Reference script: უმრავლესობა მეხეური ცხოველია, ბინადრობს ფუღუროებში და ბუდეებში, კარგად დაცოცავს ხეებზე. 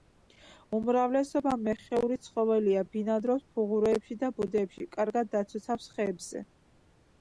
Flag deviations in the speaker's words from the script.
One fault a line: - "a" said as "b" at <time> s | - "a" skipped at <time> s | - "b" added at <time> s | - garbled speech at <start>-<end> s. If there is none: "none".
none